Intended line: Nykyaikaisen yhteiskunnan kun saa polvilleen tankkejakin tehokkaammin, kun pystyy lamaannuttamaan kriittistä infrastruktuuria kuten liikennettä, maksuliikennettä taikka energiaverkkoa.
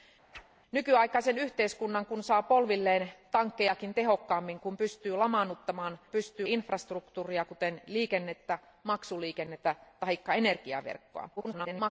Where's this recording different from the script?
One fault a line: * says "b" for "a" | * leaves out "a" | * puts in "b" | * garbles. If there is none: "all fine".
* says "pystyy" for "kriittistä"
* garbles